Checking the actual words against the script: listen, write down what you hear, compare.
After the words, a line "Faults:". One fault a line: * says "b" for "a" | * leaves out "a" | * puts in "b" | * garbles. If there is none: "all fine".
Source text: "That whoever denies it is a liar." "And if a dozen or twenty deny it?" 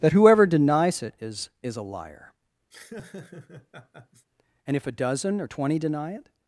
"That whoever denies it is is a liar." "And if a dozen or twenty deny it?"
Faults:
* puts in "is"